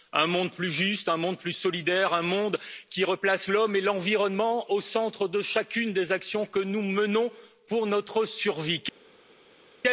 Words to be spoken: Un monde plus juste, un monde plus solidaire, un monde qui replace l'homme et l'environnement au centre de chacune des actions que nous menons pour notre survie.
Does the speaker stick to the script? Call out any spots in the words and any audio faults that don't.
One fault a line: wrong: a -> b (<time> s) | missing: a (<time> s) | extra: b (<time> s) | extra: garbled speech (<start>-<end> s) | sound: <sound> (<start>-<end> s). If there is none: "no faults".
no faults